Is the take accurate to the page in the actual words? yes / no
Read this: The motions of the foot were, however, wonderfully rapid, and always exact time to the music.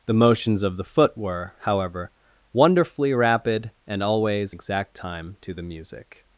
yes